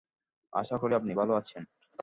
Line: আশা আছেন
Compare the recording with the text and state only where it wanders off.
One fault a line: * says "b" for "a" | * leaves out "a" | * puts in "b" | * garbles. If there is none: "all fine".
* puts in "করি আপনি ভালো"